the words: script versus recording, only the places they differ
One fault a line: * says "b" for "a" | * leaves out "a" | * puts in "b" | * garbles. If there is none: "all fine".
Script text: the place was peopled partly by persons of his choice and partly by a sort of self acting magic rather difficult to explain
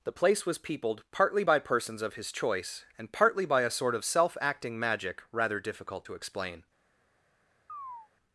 all fine